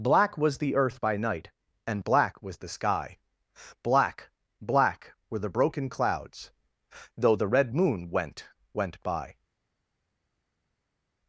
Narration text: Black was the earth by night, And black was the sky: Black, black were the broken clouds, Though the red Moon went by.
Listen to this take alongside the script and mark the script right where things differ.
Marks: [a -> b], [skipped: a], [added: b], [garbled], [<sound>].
Black was the earth by night, And black was the sky: Black, black were the broken clouds, Though the red Moon went [added: went] by.